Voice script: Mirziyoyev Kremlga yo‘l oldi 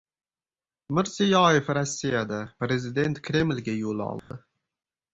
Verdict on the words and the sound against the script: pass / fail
fail